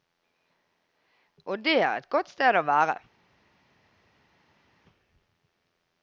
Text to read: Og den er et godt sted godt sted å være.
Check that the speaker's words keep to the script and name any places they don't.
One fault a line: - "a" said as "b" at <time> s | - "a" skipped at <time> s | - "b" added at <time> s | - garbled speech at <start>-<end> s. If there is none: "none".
- "den" said as "det" at 1.6 s
- "godt sted" skipped at 2.6 s